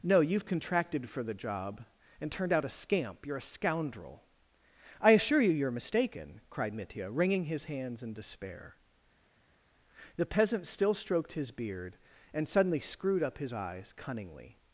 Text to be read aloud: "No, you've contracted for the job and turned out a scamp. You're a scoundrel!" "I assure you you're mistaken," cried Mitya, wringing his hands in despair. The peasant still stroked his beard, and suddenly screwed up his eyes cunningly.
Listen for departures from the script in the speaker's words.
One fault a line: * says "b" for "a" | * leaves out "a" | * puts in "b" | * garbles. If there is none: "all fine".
all fine